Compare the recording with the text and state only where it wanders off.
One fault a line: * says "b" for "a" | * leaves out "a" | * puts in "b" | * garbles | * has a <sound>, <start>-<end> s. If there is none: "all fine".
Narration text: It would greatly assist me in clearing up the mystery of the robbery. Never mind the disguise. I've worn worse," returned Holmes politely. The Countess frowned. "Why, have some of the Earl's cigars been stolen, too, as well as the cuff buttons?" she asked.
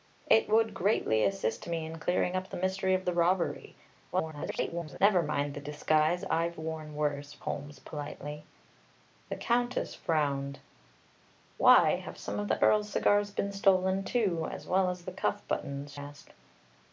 * garbles
* leaves out "returned"
* leaves out "she"